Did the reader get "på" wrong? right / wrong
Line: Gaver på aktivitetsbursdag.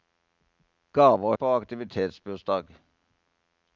right